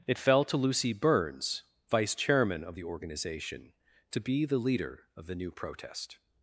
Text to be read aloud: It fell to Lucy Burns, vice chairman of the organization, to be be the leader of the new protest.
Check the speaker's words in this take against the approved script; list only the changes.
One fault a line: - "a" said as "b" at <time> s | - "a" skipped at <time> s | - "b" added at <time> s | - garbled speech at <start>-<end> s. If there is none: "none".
- "be" skipped at 4.4 s